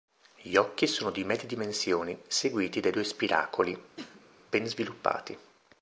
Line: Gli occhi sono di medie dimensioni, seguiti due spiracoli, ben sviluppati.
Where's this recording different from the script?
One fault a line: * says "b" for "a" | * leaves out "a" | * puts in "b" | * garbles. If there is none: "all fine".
* puts in "dai"